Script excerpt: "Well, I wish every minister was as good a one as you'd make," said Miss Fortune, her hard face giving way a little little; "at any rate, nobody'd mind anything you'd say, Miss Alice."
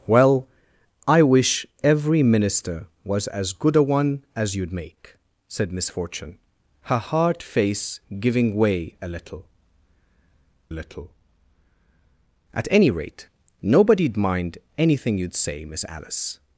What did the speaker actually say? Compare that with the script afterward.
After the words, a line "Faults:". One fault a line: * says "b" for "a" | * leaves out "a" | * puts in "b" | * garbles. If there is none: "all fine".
"Well, I wish every minister was as good a one as you'd make," said Miss Fortune, her hard face giving way a little little; "at any rate, nobody'd mind anything you'd say, Miss Alice."
Faults:
all fine